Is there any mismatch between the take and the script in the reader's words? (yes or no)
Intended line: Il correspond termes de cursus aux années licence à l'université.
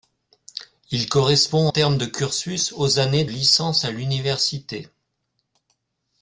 no